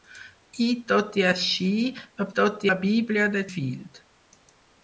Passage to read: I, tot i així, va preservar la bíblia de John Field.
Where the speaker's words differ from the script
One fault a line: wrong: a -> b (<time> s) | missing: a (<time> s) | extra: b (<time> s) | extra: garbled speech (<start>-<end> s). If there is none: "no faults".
wrong: preservar -> tot (2.4 s)
missing: John (3.5 s)